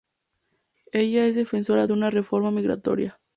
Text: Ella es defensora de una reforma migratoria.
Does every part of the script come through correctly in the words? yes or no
yes